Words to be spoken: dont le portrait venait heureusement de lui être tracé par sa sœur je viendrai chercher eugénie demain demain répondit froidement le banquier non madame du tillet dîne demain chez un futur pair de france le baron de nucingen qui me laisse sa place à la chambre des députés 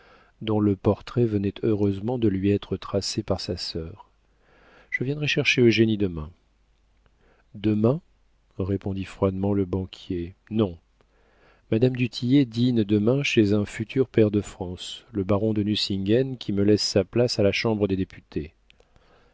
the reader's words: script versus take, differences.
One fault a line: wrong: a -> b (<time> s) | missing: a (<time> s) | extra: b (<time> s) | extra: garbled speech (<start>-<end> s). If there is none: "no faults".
no faults